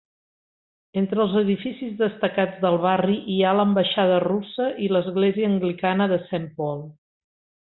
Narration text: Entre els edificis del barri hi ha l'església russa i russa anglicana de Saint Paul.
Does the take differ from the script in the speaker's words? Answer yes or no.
yes